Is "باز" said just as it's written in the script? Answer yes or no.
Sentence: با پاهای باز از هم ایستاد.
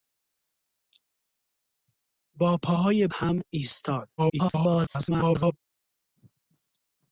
no